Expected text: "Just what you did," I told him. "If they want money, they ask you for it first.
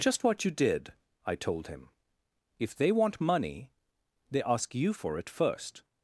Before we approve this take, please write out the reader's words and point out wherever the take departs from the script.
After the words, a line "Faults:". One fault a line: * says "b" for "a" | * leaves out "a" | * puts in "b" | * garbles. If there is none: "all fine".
"Just what you did," I told him. "If they want money, they ask you for it first.
Faults:
all fine